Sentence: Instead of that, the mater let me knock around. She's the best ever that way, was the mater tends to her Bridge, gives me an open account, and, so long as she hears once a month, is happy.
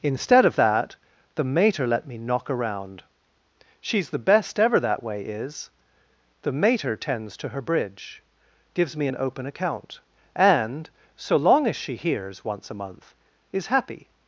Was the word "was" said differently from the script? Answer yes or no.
yes